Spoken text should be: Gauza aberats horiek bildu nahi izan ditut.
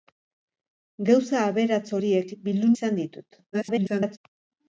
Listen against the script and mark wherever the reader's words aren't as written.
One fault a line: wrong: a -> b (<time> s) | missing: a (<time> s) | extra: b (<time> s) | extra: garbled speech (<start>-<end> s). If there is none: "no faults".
missing: nahi (2.7 s)
extra: garbled speech (3.5-4.2 s)